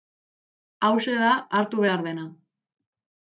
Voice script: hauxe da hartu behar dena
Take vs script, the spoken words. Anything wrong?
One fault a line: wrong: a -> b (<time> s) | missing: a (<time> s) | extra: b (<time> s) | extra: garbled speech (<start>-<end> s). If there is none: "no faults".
no faults